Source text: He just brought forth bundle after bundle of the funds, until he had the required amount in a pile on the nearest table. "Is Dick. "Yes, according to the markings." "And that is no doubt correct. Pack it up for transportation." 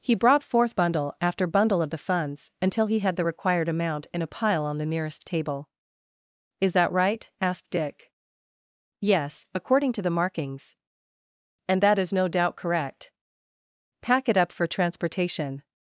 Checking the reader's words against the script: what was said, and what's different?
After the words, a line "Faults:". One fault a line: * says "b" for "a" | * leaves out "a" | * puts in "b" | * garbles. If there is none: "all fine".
He brought forth bundle after bundle of the funds, until he had the required amount in a pile on the nearest table. "Is that right?" asked Dick. "Yes, according to the markings." "And that is no doubt correct. Pack it up for transportation."
Faults:
* leaves out "just"
* puts in "that right asked"